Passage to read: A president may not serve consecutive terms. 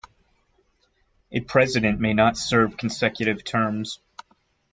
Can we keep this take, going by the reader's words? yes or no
yes